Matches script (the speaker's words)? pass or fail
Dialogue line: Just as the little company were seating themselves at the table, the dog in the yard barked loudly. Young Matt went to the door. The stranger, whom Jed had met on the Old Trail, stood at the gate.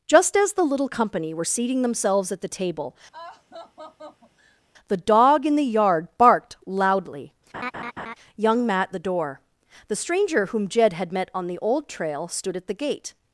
fail